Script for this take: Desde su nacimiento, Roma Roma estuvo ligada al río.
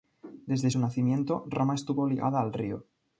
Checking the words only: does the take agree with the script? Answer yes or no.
no